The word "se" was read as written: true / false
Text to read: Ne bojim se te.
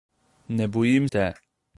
false